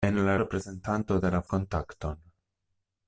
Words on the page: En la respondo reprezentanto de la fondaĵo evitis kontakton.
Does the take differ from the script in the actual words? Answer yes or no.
yes